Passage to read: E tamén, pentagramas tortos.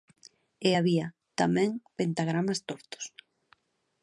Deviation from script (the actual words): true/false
true